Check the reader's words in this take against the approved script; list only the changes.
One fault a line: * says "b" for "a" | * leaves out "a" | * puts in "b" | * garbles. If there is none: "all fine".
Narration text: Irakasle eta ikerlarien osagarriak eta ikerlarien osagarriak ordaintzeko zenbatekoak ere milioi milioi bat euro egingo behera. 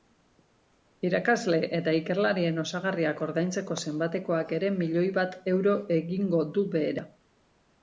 * leaves out "eta ikerlarien osagarriak"
* leaves out "milioi"
* puts in "du"